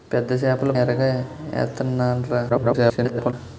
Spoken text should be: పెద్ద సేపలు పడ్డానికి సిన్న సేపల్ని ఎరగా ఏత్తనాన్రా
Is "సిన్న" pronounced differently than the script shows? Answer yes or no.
yes